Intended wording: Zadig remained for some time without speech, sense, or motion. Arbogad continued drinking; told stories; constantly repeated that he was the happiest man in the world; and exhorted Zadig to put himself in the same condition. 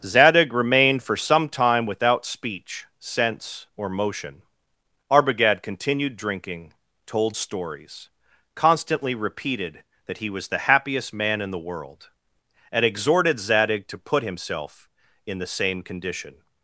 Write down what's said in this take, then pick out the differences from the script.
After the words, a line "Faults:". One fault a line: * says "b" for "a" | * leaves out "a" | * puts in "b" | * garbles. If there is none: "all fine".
Zadig remained for some time without speech, sense, or motion. Arbogad continued drinking; told stories; constantly repeated that he was the happiest man in the world; and exhorted Zadig to put himself in the same condition.
Faults:
all fine